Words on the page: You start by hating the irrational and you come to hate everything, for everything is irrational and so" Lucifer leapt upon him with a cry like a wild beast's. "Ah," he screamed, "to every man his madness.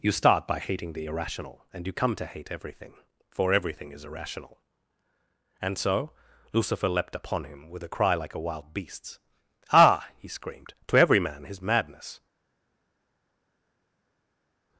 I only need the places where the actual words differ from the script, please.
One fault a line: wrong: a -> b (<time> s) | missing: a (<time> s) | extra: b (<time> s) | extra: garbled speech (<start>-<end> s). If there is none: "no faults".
no faults